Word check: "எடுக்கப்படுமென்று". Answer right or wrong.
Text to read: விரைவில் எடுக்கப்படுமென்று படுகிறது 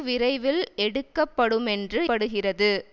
right